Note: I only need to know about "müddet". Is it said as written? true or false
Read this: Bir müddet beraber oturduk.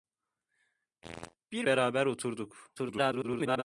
false